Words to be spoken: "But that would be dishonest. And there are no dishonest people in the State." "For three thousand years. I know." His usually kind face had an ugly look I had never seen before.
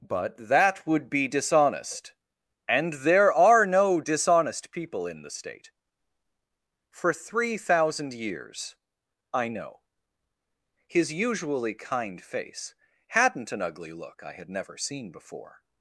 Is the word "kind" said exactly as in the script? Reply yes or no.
yes